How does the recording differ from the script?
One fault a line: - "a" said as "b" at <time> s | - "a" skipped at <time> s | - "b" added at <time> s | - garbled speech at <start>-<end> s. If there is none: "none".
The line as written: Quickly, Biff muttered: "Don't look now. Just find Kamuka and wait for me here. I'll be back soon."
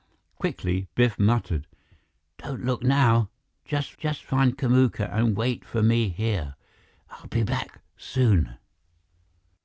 - "just" added at 4.0 s